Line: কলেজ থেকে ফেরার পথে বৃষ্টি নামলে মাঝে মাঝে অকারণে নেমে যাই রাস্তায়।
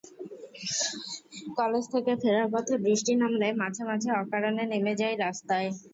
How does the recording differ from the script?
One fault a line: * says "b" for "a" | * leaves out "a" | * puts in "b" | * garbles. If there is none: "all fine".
all fine